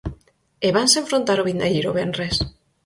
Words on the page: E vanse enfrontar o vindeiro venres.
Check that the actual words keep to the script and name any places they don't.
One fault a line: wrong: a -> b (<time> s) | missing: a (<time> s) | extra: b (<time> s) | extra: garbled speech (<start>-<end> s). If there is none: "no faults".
no faults